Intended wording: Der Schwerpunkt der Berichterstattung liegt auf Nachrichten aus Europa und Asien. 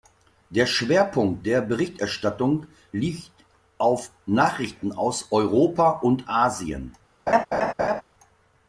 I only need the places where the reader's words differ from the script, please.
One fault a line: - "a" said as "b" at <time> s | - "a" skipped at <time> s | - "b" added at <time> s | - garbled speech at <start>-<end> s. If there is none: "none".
none